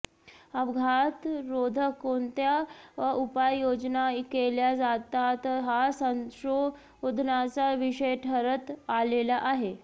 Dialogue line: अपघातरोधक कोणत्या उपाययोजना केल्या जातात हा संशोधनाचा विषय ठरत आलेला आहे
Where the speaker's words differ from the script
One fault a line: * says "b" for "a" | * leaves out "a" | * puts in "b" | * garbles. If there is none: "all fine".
all fine